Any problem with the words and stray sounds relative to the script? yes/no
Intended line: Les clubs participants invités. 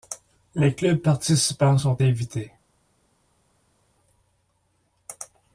yes